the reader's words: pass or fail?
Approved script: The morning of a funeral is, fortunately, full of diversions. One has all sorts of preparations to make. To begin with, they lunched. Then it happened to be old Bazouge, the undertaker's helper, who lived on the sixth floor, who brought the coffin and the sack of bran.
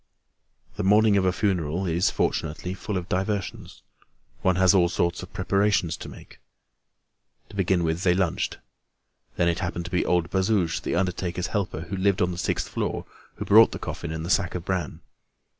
pass